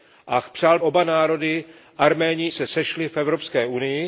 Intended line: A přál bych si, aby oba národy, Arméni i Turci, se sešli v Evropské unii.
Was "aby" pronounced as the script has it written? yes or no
no